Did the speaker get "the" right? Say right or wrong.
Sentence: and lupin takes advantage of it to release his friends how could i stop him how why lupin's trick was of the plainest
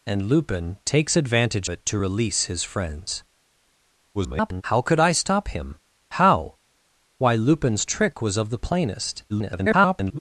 right